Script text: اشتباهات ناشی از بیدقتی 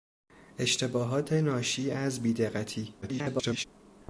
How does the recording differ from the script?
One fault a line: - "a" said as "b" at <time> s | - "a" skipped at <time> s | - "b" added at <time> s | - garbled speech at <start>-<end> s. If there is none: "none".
- garbled speech at 3.0-3.6 s